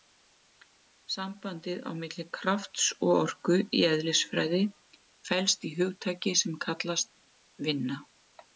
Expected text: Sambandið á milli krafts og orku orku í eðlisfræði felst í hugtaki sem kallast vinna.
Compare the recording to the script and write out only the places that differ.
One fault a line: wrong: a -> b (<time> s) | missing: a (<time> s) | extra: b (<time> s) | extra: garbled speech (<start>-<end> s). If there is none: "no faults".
missing: orku (3.6 s)